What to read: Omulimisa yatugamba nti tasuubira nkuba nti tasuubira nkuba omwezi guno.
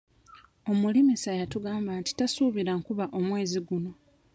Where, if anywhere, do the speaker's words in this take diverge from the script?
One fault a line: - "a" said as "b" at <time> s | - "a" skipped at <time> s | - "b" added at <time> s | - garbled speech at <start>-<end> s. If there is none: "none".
- "nti tasuubira nkuba" skipped at 3.0 s